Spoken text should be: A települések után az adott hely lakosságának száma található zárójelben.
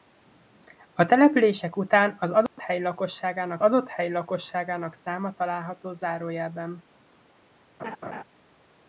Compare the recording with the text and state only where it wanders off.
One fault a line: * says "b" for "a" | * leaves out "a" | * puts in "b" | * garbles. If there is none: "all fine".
* puts in "adott hely lakosságának"